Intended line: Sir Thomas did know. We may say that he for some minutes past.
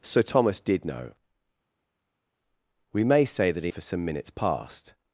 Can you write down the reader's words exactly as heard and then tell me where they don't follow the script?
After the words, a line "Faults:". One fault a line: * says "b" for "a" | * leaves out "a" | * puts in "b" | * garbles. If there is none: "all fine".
Sir Thomas did know. We may say that he for some minutes past.
Faults:
all fine